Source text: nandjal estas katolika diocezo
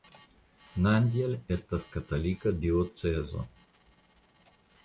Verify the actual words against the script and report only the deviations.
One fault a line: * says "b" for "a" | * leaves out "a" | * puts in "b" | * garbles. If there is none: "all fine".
all fine